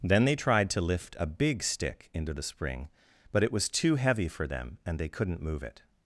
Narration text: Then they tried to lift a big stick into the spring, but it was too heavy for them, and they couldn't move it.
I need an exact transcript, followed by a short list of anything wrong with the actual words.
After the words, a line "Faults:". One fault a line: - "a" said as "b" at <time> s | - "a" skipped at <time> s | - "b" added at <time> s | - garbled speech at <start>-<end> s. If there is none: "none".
Then they tried to lift a big stick into the spring, but it was too heavy for them, and they couldn't move it.
Faults:
none